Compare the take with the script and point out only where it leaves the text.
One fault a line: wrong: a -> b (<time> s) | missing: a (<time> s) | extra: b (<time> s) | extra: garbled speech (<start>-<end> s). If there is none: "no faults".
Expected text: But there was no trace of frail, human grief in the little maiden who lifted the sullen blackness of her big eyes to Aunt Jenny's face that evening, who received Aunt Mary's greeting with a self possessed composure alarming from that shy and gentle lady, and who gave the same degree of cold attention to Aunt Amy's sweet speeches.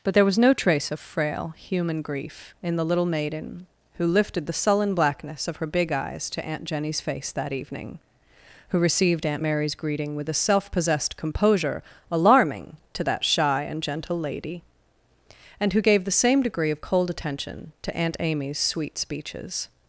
wrong: from -> to (12.9 s)